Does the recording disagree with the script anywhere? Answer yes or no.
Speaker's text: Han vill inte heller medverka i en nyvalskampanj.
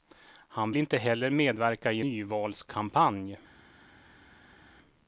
yes